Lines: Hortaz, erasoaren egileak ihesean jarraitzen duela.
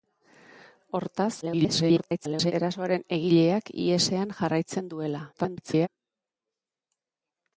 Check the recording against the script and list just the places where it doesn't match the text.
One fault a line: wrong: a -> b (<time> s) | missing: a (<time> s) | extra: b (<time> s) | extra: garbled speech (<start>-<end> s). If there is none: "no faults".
extra: garbled speech (1.4-2.5 s)
extra: garbled speech (5.3-5.9 s)